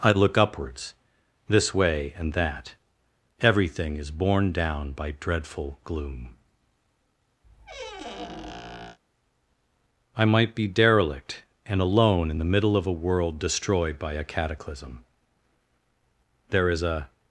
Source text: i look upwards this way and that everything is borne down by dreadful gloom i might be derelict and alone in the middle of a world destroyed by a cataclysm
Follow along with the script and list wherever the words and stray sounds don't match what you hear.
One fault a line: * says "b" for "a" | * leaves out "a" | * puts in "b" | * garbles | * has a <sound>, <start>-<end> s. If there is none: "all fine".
* has a squeak, 7.4-9.0 s
* puts in "there is a"